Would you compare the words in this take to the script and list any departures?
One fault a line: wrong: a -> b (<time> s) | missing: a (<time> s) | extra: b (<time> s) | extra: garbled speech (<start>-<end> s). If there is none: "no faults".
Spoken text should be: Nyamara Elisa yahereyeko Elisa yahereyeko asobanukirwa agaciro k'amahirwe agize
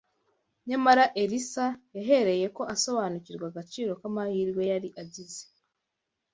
missing: Elisa yahereyeko (2.6 s)
extra: yari (4.7 s)